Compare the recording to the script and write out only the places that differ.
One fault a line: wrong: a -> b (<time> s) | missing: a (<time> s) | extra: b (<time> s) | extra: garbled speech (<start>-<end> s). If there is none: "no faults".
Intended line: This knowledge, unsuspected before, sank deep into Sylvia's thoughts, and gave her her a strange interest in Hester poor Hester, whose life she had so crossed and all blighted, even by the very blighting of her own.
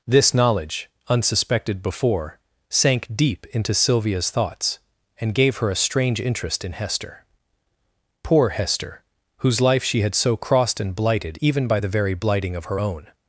missing: her (5.7 s)
missing: all (10.9 s)